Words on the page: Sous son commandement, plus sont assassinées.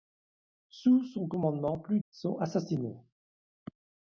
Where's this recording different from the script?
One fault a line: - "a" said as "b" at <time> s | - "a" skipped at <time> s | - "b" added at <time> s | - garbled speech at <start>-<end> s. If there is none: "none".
none